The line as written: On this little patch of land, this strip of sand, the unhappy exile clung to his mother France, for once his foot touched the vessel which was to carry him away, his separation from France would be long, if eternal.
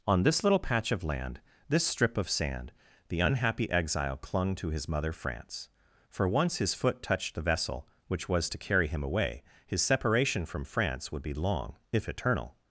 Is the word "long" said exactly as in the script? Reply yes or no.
yes